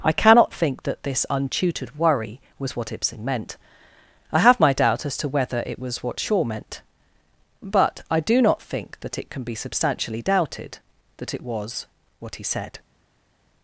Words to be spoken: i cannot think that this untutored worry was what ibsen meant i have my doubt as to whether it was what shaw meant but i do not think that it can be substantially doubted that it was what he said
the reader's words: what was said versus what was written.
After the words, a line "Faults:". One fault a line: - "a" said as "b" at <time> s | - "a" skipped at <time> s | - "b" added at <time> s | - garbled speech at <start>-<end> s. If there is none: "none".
i cannot think that this untutored worry was what ibsen meant i have my doubt as to whether it was what shaw meant but i do not think that it can be substantially doubted that it was what he said
Faults:
none